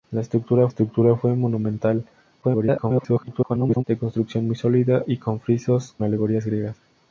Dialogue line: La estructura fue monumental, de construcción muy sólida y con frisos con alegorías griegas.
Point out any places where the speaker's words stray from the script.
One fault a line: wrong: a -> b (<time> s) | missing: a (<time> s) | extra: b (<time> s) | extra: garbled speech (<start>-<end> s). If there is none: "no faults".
extra: estructura (0.7 s)
extra: garbled speech (2.4-3.8 s)
missing: con (6.0 s)